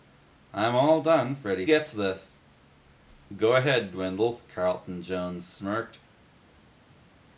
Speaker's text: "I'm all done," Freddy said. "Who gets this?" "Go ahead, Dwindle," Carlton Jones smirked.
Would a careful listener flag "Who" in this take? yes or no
yes